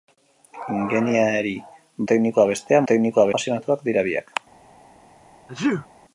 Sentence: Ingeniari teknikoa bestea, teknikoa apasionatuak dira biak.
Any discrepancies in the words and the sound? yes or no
yes